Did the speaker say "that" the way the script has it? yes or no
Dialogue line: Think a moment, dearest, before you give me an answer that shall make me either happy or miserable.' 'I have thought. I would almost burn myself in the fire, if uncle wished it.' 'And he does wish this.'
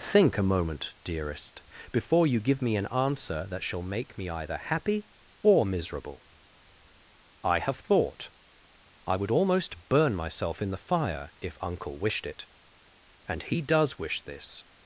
yes